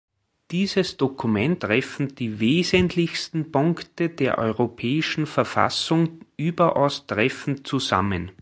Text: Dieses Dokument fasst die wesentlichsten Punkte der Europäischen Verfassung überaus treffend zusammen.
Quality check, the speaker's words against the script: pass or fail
fail